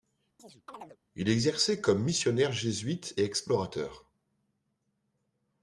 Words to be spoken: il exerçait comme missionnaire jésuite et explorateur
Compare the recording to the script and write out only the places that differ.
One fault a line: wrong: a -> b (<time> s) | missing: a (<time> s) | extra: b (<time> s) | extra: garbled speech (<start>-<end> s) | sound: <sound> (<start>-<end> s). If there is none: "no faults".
sound: chirp (0.4-1.0 s)